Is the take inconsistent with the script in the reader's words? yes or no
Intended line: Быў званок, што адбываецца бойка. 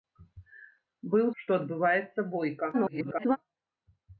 yes